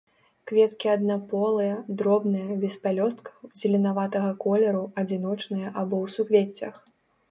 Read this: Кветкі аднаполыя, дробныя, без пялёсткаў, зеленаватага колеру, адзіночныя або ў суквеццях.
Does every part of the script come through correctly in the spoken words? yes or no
yes